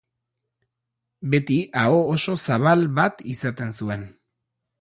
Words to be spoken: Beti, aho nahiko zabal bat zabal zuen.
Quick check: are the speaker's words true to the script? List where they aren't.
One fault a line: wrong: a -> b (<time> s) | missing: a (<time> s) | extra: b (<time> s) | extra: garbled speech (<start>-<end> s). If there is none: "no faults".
wrong: nahiko -> oso (2.1 s)
wrong: zabal -> izaten (3.4 s)